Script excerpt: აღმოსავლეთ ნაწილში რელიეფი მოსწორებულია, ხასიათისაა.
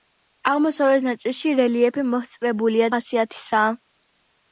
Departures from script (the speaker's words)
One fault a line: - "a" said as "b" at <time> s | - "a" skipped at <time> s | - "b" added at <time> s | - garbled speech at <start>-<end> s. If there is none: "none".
none